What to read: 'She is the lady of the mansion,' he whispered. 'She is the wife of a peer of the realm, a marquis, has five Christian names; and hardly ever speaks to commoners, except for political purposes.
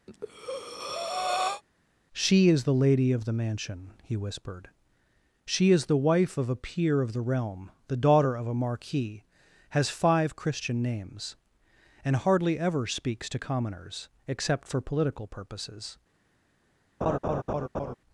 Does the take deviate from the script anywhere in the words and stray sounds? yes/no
yes